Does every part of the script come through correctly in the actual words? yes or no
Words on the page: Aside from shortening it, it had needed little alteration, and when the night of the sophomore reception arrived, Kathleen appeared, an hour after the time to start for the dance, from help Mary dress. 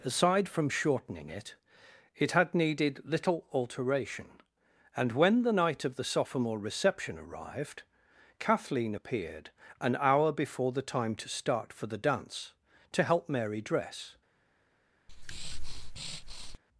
no